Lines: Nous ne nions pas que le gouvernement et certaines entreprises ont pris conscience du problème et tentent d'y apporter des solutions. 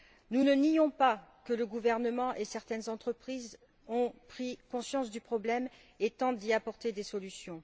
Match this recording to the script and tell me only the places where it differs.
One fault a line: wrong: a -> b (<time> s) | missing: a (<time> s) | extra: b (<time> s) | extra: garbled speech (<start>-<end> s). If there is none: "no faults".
no faults